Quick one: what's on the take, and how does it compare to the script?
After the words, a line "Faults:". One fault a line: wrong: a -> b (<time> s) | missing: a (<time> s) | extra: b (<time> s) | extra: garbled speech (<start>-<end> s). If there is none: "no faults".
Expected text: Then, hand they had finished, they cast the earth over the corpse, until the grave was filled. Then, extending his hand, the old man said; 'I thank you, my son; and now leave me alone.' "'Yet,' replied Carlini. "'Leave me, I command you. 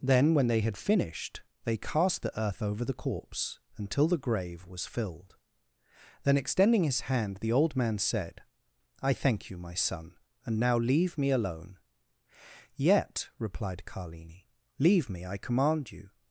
Then, when they had finished, they cast the earth over the corpse, until the grave was filled. Then, extending his hand, the old man said; 'I thank you, my son; and now leave me alone.' "'Yet,' replied Carlini. "'Leave me, I command you.
Faults:
wrong: hand -> when (0.3 s)